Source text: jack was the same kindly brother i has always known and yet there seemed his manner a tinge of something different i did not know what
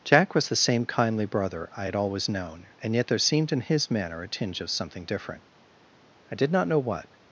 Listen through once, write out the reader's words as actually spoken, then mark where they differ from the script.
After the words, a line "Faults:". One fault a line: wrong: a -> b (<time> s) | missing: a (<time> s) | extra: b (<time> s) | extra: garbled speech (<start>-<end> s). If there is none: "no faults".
jack was the same kindly brother i had always known and yet there seemed in his manner a tinge of something different i did not know what
Faults:
wrong: has -> had (1.8 s)
extra: in (3.5 s)